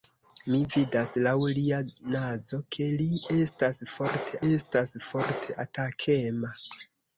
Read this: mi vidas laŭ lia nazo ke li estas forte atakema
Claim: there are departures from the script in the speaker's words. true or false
true